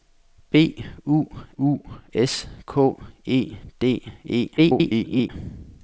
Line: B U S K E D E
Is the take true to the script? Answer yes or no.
no